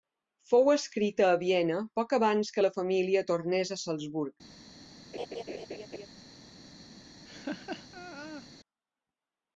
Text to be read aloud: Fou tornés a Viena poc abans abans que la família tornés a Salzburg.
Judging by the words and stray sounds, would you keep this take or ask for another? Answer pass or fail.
fail